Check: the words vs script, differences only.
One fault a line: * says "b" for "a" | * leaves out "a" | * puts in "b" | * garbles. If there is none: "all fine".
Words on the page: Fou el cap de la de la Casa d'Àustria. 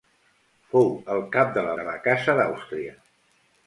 all fine